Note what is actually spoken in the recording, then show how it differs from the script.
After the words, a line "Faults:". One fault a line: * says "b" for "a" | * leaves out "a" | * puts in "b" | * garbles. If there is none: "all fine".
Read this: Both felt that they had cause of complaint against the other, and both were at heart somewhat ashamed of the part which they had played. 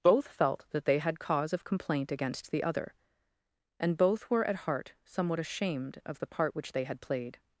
Both felt that they had cause of complaint against the other, and both were at heart somewhat ashamed of the part which they had played.
Faults:
all fine